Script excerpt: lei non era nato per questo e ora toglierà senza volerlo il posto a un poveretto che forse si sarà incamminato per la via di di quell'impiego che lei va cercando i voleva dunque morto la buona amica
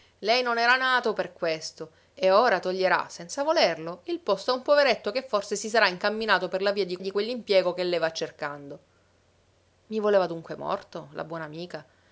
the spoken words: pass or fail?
pass